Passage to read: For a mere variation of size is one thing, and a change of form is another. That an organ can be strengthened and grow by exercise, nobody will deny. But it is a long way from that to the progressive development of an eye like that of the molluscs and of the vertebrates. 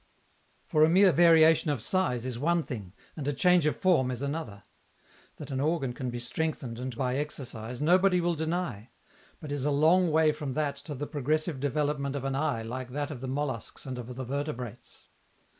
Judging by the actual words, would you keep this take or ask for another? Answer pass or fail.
fail